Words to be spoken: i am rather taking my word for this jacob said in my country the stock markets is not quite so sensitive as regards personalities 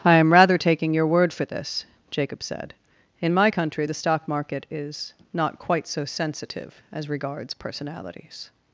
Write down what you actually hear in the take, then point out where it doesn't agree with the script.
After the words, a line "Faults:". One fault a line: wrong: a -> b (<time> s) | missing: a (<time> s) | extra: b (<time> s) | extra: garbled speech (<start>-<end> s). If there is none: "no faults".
i am rather taking your word for this jacob said in my country the stock market is not quite so sensitive as regards personalities
Faults:
wrong: my -> your (0.9 s)
wrong: markets -> market (4.3 s)